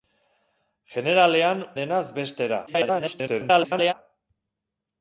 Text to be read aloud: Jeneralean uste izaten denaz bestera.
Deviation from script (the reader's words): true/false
true